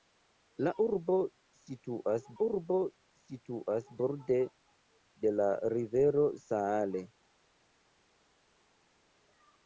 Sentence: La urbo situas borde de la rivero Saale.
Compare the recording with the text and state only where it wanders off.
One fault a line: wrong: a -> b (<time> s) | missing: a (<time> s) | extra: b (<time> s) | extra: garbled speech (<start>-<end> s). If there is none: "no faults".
extra: urbo situas (2.4 s)